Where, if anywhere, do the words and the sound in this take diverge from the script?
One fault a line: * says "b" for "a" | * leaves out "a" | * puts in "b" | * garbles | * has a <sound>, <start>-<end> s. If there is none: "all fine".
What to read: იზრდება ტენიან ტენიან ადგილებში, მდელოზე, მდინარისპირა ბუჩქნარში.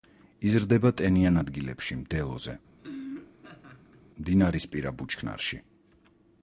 * leaves out "ტენიან"
* has a laugh, 2.8-4.0 s